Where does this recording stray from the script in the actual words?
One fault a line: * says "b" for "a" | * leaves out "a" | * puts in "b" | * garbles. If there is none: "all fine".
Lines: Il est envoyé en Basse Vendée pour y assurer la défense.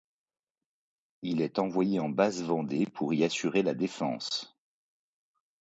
all fine